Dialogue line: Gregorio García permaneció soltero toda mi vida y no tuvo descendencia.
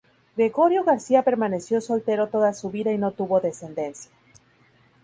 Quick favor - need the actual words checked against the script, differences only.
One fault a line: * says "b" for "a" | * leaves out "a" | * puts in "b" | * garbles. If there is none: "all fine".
* says "su" for "mi"